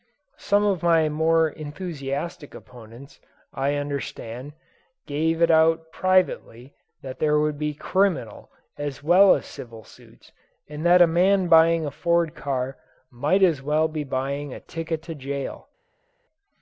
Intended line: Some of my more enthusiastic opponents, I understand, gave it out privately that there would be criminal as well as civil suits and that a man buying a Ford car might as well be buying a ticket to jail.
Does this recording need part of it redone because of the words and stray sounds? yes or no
no